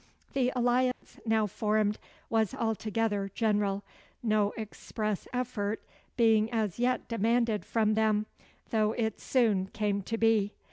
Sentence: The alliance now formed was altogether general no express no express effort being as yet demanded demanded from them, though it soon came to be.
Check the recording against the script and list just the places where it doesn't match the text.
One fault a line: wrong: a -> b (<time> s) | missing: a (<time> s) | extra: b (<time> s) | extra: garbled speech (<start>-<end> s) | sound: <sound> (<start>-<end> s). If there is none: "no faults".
sound: dropout (0.9-1.0 s)
missing: no express (5.3 s)
missing: demanded (7.6 s)